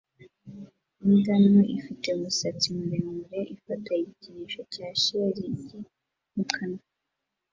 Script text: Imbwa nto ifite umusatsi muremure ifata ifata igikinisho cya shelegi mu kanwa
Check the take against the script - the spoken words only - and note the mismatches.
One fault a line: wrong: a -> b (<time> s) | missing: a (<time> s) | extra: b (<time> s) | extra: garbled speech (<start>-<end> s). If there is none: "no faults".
missing: ifata (3.9 s)